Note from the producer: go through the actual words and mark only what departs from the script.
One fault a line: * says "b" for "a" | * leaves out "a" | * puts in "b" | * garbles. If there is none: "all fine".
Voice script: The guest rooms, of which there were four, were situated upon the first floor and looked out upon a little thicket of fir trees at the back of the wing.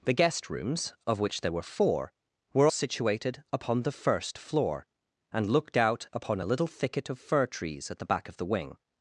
all fine